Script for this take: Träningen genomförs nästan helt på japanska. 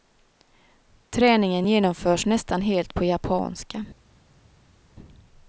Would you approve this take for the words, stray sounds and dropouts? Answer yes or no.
yes